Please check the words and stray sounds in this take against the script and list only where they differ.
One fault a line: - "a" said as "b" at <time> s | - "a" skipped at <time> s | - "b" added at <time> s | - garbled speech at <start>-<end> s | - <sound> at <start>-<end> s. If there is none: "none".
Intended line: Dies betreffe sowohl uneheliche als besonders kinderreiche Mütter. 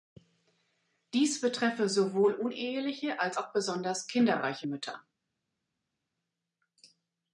- "auch" added at 3.3 s